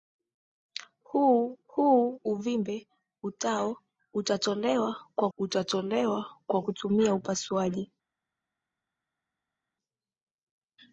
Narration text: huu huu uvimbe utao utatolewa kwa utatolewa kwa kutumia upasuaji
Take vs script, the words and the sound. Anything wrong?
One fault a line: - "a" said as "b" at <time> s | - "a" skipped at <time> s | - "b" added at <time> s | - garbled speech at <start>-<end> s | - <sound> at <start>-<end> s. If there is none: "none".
none